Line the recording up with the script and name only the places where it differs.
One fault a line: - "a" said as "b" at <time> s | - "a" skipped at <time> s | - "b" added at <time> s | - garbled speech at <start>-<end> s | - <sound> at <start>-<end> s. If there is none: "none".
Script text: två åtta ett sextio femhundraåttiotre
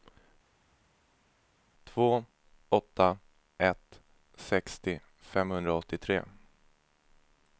none